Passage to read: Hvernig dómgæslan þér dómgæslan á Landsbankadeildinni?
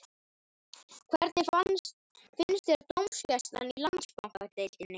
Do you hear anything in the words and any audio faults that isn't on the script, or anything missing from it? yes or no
yes